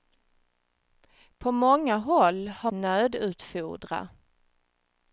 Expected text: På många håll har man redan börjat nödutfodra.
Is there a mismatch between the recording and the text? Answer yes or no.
yes